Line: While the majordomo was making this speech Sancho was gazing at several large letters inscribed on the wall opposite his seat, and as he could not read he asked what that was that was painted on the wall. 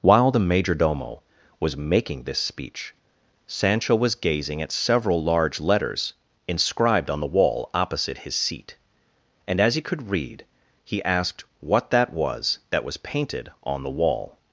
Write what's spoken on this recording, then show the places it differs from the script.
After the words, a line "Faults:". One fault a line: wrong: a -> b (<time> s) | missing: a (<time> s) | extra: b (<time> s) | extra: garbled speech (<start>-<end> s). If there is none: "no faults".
While the majordomo was making this speech Sancho was gazing at several large letters inscribed on the wall opposite his seat, and as he could read he asked what that was that was painted on the wall.
Faults:
missing: not (10.1 s)